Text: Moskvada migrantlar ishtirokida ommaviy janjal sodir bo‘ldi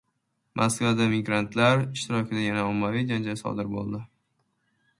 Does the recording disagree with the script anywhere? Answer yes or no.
yes